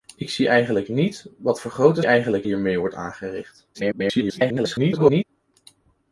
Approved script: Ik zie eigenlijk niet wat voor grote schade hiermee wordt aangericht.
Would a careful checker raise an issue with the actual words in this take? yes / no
yes